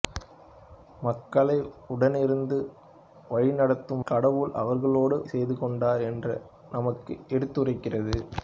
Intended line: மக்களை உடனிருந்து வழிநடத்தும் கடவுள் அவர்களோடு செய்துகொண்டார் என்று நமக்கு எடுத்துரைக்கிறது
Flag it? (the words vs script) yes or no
no